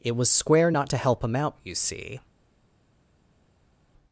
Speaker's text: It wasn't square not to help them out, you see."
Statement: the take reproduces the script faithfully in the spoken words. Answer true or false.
false